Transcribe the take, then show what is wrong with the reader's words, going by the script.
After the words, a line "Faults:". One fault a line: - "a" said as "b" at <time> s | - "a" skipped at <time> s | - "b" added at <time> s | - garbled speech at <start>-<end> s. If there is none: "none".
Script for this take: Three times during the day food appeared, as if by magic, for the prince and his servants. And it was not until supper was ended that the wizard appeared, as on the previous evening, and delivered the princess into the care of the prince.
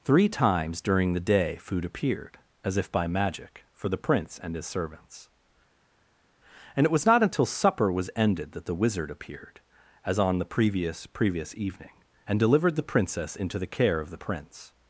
Three times during the day food appeared, as if by magic, for the prince and his servants. And it was not until supper was ended that the wizard appeared, as on the previous previous evening, and delivered the princess into the care of the prince.
Faults:
- "previous" added at 11.0 s